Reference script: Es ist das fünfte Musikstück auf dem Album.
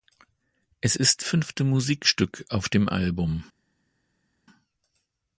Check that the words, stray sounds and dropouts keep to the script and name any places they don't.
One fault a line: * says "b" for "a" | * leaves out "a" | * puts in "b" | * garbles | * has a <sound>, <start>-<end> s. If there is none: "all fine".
* leaves out "das"